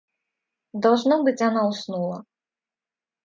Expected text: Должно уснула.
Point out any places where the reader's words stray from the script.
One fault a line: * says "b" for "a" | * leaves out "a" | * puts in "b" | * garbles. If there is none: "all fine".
* puts in "быть она"